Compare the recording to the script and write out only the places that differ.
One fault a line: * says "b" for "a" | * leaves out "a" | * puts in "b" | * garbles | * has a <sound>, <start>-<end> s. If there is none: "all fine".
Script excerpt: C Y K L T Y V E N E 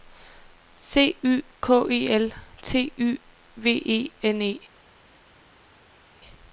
* puts in "E"